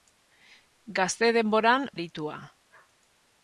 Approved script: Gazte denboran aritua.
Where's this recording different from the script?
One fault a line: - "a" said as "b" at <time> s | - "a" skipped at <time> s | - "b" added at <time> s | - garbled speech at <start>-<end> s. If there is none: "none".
none